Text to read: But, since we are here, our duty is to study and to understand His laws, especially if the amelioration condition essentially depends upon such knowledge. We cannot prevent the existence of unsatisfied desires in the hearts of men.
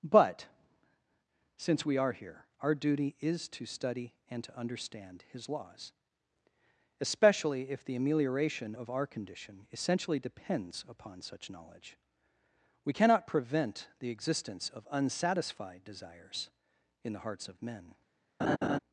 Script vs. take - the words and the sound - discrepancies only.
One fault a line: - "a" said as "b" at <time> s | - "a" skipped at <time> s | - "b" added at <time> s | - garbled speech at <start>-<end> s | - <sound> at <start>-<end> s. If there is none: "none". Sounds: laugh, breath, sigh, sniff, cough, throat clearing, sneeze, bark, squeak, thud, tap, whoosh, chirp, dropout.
- "of our" added at 8.7 s
- laugh at 18.4-18.8 s